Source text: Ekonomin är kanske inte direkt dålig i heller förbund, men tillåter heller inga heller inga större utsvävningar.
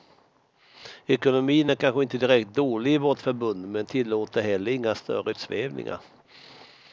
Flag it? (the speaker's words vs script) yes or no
yes